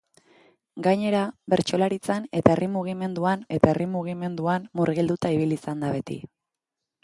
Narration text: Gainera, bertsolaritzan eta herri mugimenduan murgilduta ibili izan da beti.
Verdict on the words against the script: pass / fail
fail